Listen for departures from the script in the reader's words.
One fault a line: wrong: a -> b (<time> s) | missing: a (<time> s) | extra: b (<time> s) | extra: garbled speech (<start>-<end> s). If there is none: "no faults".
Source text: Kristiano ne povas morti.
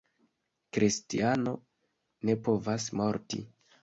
no faults